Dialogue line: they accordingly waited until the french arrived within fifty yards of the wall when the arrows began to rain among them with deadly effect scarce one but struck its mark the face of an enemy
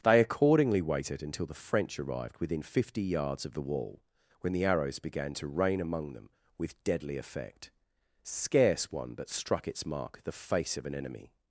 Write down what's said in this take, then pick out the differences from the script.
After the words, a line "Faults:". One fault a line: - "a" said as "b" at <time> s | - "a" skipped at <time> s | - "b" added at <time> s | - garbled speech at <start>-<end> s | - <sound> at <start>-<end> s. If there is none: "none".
they accordingly waited until the french arrived within fifty yards of the wall when the arrows began to rain among them with deadly effect scarce one but struck its mark the face of an enemy
Faults:
none